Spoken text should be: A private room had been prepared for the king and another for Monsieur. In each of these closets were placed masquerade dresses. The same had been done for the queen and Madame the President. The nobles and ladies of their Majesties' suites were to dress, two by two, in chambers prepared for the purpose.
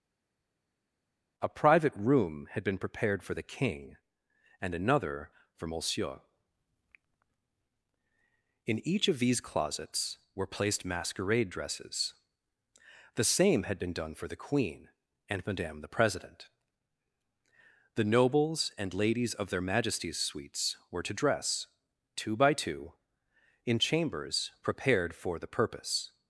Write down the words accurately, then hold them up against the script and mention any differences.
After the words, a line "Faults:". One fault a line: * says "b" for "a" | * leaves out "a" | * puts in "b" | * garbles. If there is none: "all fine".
A private room had been prepared for the king and another for Monsieur. In each of these closets were placed masquerade dresses. The same had been done for the queen and Madame the President. The nobles and ladies of their Majesties' suites were to dress, two by two, in chambers prepared for the purpose.
Faults:
all fine